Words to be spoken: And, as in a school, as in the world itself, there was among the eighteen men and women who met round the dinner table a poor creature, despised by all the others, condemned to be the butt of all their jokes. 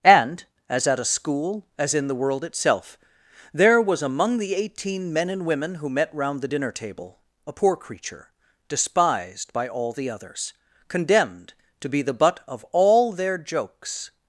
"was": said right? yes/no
yes